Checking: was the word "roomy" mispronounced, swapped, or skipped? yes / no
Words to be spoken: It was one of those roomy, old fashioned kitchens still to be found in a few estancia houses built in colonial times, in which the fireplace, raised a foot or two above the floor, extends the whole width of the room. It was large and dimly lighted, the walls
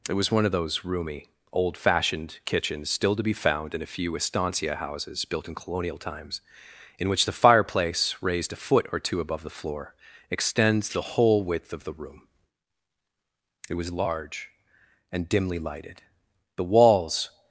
no